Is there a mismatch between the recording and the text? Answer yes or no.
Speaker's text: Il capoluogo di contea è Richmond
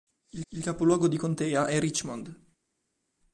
yes